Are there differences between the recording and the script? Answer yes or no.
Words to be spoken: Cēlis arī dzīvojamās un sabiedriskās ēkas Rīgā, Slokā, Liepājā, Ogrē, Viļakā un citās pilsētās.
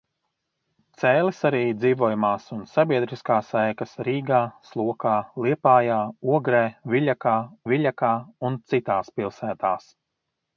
yes